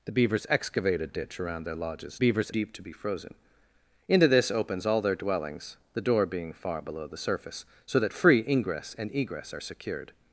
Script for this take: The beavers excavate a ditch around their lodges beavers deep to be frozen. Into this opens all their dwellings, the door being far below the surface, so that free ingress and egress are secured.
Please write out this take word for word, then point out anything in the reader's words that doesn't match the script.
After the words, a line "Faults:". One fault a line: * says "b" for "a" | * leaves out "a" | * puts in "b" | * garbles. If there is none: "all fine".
The beavers excavate a ditch around their lodges beavers deep to be frozen. Into this opens all their dwellings, the door being far below the surface, so that free ingress and egress are secured.
Faults:
all fine